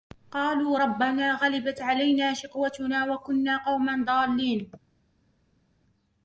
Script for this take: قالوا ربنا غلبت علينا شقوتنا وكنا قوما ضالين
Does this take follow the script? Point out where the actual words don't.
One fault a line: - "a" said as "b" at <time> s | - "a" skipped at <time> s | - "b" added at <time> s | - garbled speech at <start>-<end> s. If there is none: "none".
none